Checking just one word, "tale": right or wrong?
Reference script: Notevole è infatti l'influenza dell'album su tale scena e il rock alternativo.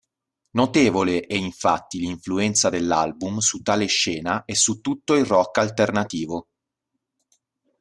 right